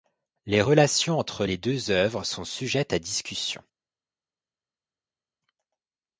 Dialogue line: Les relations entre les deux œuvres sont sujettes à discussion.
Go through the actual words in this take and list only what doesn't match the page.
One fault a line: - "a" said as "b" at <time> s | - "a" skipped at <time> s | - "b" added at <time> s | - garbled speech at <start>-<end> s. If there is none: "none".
none